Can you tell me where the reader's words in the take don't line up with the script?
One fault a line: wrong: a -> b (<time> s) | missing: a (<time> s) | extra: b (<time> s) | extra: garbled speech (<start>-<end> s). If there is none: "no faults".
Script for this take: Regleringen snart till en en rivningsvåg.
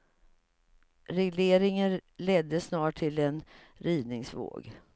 extra: ledde (2.2 s)
missing: en (3.4 s)